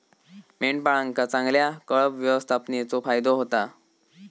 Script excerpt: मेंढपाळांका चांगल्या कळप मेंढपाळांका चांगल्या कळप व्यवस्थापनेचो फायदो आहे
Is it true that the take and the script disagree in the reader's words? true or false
true